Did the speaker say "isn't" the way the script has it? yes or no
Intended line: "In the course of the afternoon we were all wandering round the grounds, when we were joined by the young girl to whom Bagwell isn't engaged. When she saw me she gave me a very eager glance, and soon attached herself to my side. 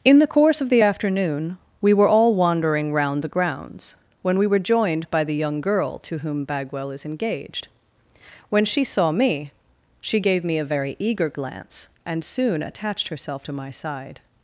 no